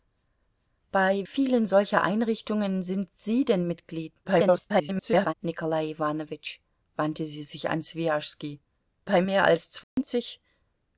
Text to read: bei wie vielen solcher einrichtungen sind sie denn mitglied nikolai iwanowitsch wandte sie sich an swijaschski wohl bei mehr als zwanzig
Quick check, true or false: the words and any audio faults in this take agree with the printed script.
false